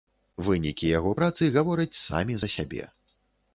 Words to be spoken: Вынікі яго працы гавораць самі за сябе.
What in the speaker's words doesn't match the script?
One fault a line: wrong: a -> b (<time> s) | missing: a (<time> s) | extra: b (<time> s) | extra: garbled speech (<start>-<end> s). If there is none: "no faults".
no faults